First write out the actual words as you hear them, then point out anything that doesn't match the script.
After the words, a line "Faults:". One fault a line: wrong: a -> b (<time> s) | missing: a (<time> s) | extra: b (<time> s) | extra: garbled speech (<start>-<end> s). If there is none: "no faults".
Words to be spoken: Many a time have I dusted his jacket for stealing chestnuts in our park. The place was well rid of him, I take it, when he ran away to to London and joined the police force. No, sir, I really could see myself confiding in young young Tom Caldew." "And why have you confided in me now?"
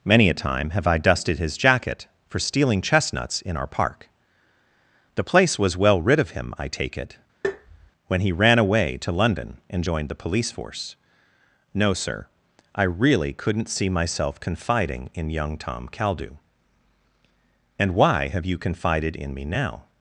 Many a time have I dusted his jacket for stealing chestnuts in our park. The place was well rid of him, I take it, when he ran away to London and joined the police force. No, sir, I really couldn't see myself confiding in young Tom Caldew." "And why have you confided in me now?"
Faults:
missing: to (9.1 s)
wrong: could -> couldn't (13.3 s)
missing: young (15.6 s)